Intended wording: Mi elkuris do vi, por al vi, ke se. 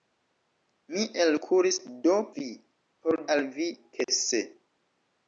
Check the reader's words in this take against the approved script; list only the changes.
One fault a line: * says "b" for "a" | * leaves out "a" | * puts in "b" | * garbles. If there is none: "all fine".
all fine